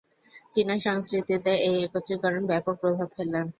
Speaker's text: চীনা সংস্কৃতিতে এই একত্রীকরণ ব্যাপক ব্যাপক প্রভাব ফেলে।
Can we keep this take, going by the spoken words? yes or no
no